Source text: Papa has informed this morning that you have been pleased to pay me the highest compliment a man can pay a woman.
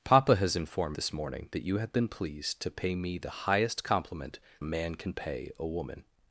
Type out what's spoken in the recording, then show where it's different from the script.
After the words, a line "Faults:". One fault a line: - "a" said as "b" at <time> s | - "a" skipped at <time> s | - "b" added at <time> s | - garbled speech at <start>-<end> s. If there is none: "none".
Papa has informed this morning that you have been pleased to pay me the highest compliment a man can pay a woman.
Faults:
none